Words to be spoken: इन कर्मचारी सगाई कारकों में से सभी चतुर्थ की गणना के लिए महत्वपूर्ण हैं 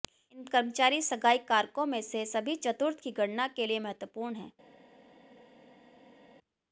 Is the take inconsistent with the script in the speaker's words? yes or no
no